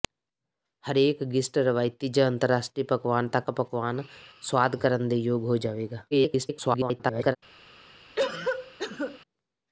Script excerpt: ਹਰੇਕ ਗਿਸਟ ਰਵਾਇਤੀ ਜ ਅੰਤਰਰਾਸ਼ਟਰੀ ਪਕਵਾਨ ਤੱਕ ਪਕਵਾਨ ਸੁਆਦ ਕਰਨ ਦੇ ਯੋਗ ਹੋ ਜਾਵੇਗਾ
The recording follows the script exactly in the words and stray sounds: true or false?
false